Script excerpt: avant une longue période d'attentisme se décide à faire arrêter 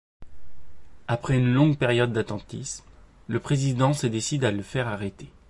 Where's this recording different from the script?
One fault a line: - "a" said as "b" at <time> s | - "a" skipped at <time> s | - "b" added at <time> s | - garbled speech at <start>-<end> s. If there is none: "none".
- "avant" said as "après" at 1.1 s
- "le président" added at 3.3 s
- "le" added at 4.5 s